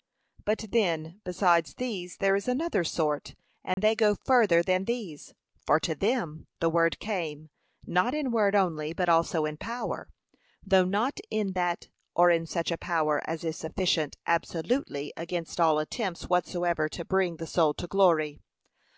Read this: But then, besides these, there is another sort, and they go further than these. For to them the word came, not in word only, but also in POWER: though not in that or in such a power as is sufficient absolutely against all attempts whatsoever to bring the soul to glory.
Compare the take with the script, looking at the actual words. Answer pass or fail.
pass